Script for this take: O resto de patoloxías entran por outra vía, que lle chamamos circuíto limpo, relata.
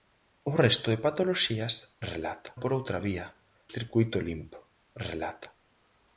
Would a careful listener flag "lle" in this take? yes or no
yes